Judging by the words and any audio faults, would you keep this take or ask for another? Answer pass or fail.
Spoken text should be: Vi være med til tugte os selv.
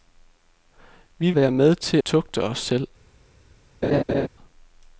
fail